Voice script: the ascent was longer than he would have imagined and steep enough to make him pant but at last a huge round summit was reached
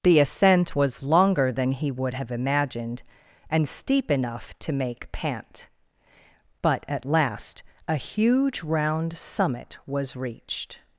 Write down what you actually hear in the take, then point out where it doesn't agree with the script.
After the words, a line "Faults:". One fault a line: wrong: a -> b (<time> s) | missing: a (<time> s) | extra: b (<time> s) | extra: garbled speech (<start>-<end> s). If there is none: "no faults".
the ascent was longer than he would have imagined and steep enough to make pant but at last a huge round summit was reached
Faults:
missing: him (5.1 s)